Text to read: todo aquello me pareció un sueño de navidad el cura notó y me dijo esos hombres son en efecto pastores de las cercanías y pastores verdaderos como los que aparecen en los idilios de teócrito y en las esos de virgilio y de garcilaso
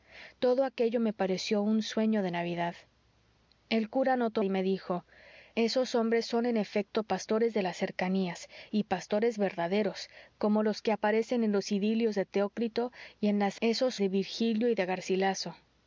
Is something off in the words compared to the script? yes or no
no